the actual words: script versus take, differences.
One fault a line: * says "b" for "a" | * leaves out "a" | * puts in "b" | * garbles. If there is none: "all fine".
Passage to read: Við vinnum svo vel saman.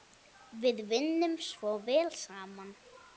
all fine